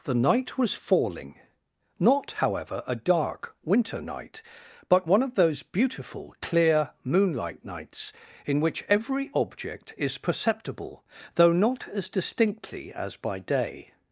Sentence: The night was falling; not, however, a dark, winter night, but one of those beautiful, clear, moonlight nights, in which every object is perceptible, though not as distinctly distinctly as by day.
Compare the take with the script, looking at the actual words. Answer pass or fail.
fail